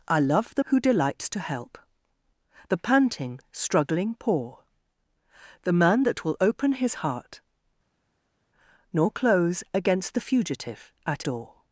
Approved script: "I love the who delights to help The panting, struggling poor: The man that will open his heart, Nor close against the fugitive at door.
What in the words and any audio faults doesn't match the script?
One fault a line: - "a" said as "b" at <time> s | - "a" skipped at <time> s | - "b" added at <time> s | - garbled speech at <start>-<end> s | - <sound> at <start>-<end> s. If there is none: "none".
none